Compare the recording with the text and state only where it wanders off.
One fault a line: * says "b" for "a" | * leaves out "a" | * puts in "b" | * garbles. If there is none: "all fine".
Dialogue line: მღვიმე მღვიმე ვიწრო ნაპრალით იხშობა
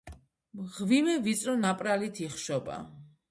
* leaves out "მღვიმე"